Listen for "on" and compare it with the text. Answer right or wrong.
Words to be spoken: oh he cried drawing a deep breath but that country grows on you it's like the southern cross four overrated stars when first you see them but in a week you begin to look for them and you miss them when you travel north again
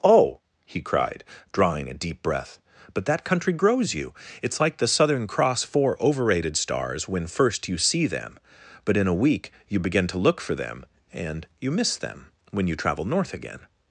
wrong